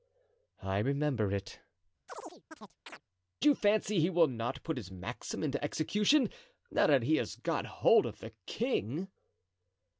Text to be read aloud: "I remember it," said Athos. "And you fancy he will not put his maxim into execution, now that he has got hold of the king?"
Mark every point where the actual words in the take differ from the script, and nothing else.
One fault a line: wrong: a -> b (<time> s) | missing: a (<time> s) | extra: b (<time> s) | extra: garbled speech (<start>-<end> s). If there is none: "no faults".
missing: said Athos And (1.6 s)